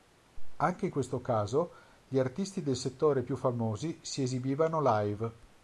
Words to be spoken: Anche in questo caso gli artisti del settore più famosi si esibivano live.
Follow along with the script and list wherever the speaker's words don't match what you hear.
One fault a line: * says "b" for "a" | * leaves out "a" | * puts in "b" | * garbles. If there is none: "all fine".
all fine